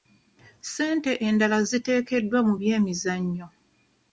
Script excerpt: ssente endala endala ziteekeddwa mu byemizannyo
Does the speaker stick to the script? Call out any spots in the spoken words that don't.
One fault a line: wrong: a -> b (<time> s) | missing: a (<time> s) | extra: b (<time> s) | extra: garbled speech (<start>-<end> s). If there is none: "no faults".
missing: endala (1.6 s)